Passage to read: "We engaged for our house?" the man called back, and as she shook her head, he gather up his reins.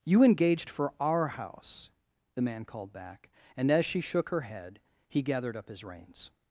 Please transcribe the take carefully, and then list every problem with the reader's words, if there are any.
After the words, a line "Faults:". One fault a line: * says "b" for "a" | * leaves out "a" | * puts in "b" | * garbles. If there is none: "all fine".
"You engaged for our house?" the man called back, and as she shook her head, he gathered up his reins.
Faults:
* says "You" for "We"
* says "gathered" for "gather"